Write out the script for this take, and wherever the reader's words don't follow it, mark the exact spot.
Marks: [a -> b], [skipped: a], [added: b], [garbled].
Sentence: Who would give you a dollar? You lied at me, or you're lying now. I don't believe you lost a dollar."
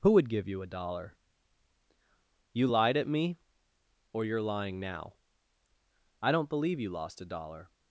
Who would give you a dollar? You lied at me, or you're lying now. I don't believe you lost a dollar."